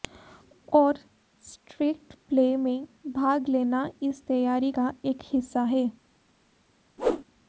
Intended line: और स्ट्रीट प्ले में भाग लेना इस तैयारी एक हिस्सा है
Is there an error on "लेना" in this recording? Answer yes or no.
no